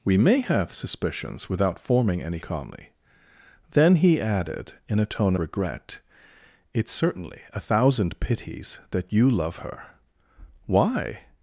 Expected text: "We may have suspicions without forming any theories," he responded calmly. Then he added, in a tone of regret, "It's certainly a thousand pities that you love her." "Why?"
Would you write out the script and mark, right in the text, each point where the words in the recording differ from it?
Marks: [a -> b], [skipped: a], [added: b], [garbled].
"We may have suspicions without forming any [skipped: theories," he responded] calmly. Then he added, in a tone [skipped: of] regret, "It's certainly a thousand pities that you love her." "Why?"